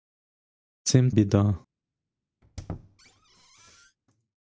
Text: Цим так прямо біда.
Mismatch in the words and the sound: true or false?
true